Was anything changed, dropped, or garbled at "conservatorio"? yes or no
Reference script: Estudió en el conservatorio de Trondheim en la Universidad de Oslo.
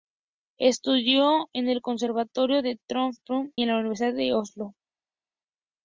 no